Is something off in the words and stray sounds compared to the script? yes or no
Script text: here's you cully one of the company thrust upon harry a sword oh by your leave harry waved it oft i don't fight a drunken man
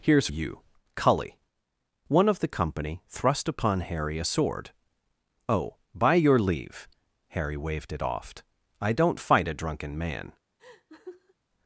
yes